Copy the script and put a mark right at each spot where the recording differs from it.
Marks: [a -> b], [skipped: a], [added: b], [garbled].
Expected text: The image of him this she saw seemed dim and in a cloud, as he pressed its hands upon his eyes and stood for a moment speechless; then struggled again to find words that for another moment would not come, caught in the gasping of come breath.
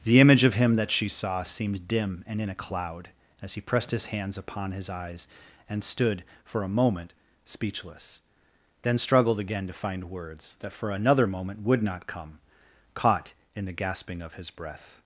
The image of him [this -> that] she saw seemed dim and in a cloud, as he pressed [its -> his] hands upon his eyes and stood for a moment speechless; then struggled again to find words that for another moment would not come, caught in the gasping of [come -> his] breath.